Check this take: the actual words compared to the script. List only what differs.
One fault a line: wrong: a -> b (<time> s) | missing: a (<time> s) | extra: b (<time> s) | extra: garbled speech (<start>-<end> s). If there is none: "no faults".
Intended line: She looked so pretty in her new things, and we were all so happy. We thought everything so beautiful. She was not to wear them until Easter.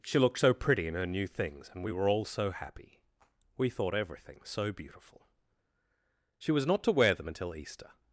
no faults